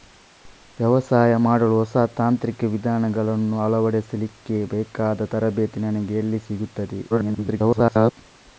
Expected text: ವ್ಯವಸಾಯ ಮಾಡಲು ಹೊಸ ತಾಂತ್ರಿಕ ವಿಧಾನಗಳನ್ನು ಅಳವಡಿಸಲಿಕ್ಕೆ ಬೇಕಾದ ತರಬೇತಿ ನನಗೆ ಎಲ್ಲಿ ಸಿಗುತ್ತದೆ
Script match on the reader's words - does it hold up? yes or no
no